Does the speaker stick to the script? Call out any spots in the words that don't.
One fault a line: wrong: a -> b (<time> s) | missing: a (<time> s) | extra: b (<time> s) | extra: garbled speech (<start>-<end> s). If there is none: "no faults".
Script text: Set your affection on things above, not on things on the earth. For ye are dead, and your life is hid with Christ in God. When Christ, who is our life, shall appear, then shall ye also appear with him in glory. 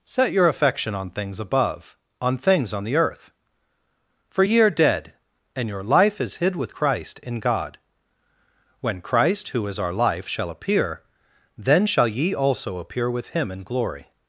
missing: not (2.0 s)